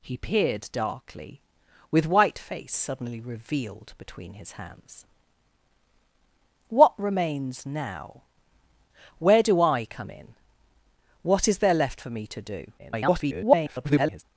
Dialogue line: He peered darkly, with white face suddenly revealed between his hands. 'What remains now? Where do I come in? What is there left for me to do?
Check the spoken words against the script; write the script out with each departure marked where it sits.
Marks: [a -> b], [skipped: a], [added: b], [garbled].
He peered darkly, with white face suddenly revealed between his hands. 'What remains now? Where do I come in? What is there left for me to do? [garbled]